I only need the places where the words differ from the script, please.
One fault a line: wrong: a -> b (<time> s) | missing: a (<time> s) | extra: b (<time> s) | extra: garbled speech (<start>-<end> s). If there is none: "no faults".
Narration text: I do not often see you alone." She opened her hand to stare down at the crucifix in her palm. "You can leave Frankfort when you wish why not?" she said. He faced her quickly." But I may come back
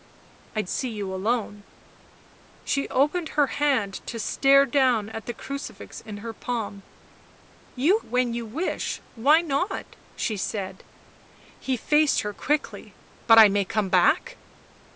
missing: do not often (0.6 s)
missing: can leave Frankfort (8.0 s)